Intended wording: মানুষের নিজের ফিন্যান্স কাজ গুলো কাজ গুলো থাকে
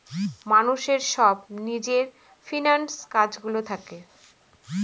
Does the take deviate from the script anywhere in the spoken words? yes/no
yes